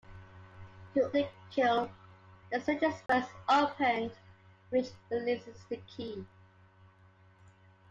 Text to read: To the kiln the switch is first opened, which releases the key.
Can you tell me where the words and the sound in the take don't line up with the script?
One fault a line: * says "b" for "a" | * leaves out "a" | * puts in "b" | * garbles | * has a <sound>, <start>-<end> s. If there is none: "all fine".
* has a dropout, 3.1-3.1 s